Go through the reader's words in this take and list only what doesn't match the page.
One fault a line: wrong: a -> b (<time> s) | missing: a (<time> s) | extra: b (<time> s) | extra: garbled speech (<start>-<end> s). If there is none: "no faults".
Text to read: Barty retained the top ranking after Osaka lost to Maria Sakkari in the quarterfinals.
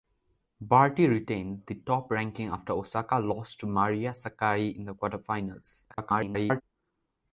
extra: garbled speech (5.9-6.6 s)